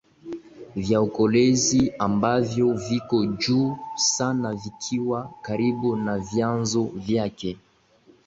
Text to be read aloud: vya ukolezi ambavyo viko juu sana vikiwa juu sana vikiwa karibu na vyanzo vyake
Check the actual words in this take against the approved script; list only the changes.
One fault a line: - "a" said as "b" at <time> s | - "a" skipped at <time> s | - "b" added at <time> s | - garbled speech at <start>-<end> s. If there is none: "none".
- "juu sana vikiwa" skipped at 5.3 s